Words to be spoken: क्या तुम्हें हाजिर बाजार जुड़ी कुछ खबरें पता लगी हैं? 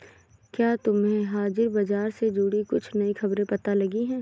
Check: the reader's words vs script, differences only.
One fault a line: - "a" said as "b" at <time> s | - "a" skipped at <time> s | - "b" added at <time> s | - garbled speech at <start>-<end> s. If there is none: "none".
- "से" added at 2.1 s
- "नई" added at 3.0 s